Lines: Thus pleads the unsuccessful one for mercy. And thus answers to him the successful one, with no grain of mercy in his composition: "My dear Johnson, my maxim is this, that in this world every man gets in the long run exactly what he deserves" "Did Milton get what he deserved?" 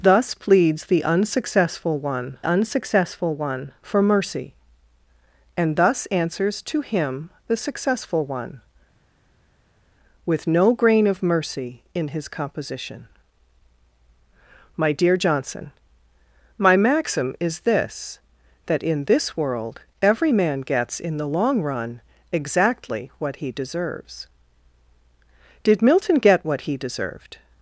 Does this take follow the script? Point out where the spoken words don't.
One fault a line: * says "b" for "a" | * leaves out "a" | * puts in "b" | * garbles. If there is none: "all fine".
* puts in "unsuccessful one"